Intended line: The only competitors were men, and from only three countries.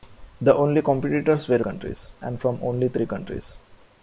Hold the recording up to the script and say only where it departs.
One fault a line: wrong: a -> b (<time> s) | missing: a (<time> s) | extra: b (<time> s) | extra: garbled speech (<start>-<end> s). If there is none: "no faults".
wrong: men -> countries (1.6 s)